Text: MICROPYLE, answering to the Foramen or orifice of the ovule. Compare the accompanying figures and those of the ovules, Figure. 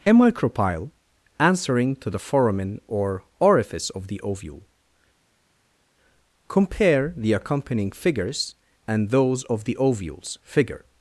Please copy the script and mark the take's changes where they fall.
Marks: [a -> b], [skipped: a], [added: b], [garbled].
[added: a] MICROPYLE, answering to the Foramen or orifice of the ovule. Compare the accompanying figures and those of the ovules, Figure.